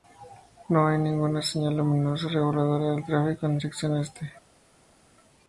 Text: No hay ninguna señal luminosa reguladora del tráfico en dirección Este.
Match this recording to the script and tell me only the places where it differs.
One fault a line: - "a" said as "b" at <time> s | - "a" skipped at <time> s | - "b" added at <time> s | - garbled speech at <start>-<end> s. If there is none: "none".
none